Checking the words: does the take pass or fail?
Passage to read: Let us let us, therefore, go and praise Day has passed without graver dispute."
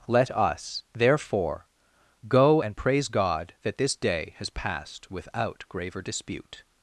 fail